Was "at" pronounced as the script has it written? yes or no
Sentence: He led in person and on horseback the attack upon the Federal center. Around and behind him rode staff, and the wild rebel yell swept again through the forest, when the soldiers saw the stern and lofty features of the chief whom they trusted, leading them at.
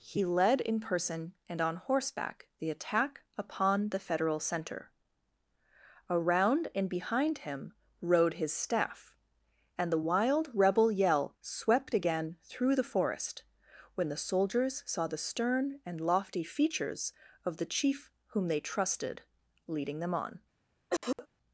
no